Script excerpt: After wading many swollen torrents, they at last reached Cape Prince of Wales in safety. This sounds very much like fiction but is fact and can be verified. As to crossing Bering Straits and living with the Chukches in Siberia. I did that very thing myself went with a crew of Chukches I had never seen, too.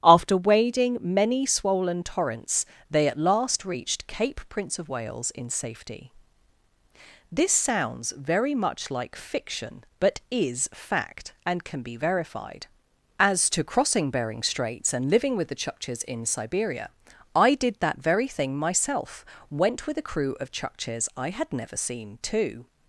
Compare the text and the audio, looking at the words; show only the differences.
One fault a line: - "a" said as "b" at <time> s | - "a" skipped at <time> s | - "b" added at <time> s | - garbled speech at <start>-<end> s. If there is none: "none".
none